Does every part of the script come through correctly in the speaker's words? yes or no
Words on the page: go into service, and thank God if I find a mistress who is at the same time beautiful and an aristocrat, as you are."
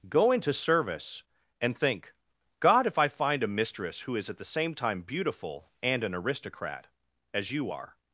no